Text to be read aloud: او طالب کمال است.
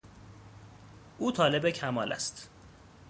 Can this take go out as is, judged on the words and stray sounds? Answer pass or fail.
pass